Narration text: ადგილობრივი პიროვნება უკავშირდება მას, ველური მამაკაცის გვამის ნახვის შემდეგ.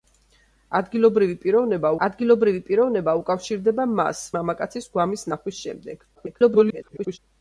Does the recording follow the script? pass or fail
fail